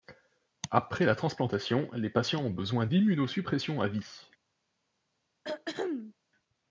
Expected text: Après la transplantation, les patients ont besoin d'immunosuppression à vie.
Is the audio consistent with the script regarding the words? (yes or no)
yes